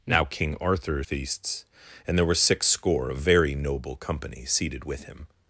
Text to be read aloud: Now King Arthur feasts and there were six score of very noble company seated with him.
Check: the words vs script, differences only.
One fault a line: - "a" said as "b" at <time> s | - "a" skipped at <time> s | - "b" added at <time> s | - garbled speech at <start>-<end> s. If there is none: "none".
none